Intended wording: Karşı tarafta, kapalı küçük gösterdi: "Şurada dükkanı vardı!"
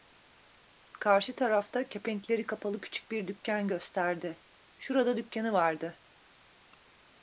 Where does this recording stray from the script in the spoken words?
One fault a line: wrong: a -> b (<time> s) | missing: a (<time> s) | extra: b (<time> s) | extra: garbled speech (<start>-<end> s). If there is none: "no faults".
extra: kepenkleri (1.9 s)
extra: bir dükkan (3.1 s)